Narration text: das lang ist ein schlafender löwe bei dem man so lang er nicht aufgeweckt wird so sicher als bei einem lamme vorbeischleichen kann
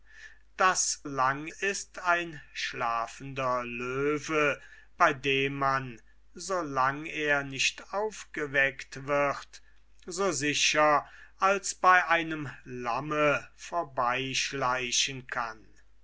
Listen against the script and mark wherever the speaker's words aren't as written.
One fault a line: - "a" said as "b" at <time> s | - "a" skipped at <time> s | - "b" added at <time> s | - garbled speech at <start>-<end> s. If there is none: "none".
none